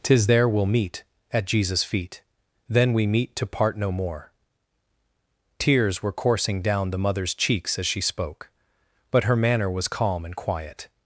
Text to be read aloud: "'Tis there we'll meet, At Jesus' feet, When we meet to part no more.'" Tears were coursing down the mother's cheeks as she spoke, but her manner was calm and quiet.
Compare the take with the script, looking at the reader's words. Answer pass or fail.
fail